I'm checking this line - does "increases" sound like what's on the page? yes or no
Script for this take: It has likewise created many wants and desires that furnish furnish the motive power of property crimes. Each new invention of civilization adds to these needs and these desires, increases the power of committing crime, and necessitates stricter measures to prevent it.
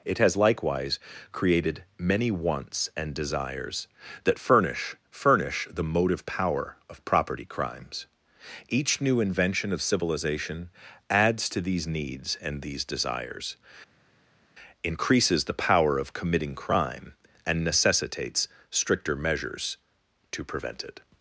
yes